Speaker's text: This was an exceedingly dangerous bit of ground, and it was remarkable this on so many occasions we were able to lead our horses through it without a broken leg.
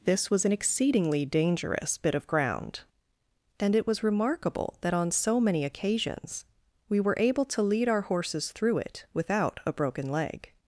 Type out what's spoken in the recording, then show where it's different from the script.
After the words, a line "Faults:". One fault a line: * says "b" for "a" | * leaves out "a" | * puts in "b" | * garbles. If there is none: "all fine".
This was an exceedingly dangerous bit of ground, and it was remarkable that on so many occasions we were able to lead our horses through it without a broken leg.
Faults:
* says "that" for "this"